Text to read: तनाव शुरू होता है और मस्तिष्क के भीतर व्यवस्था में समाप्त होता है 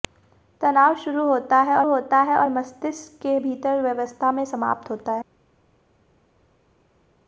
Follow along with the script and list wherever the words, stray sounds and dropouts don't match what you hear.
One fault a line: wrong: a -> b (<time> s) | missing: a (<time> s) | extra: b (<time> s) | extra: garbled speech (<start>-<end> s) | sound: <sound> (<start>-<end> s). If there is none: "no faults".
extra: होता है और (1.8 s)